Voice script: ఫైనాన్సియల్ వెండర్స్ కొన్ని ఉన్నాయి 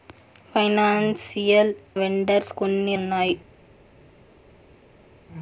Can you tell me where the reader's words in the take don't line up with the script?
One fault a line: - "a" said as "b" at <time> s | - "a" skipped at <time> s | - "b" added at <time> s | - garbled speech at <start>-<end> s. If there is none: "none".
none